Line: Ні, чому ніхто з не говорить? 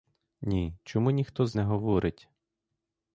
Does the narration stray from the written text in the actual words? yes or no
no